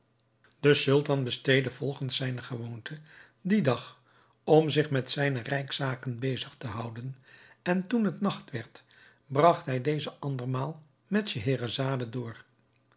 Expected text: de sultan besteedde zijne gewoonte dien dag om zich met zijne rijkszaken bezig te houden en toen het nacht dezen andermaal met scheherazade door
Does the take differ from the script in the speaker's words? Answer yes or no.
yes